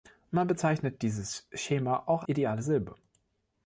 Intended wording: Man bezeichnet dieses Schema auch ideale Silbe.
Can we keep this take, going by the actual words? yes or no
yes